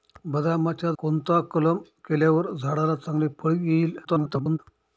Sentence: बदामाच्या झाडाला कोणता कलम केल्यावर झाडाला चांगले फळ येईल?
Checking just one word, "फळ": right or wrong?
right